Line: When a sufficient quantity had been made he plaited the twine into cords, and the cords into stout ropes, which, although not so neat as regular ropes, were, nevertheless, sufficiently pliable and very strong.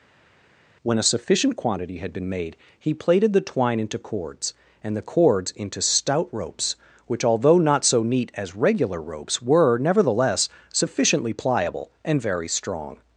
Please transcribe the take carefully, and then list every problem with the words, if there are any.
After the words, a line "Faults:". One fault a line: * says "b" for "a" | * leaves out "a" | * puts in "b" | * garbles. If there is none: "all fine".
When a sufficient quantity had been made he plaited the twine into cords, and the cords into stout ropes, which, although not so neat as regular ropes, were, nevertheless, sufficiently pliable and very strong.
Faults:
all fine